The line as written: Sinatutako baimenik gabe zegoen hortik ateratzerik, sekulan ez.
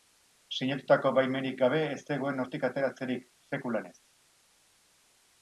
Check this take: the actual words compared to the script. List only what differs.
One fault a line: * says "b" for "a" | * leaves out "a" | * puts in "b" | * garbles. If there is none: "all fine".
* puts in "ez"